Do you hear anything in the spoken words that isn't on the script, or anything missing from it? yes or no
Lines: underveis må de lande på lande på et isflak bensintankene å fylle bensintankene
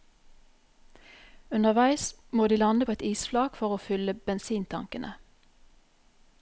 yes